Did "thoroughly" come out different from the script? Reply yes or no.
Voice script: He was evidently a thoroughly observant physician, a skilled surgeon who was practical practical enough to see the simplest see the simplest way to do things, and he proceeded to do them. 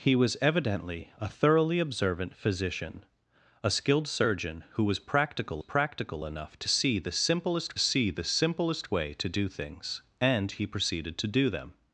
no